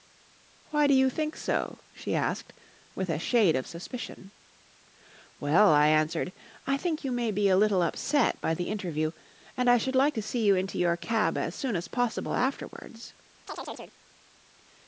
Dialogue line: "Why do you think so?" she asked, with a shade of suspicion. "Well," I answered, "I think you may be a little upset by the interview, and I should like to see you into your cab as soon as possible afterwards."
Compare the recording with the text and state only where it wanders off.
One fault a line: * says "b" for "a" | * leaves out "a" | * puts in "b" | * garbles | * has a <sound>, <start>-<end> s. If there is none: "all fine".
* has a chirp, 13.5-14.0 s